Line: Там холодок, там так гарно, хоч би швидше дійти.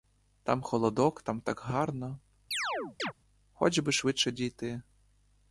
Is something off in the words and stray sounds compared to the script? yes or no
yes